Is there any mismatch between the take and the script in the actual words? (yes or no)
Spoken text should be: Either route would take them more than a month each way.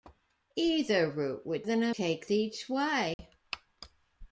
yes